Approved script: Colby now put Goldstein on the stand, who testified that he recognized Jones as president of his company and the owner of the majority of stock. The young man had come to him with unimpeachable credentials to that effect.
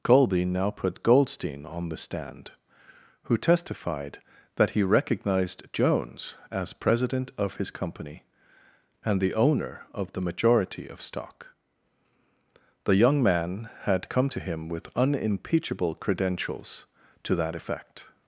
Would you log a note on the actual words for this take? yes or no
no